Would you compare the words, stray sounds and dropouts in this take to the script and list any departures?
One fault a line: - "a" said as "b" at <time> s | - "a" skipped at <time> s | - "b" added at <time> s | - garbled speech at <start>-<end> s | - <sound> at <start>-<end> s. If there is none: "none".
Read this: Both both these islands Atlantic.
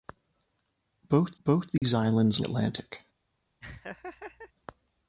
- dropout at 1.8-1.8 s
- laugh at 3.6-4.5 s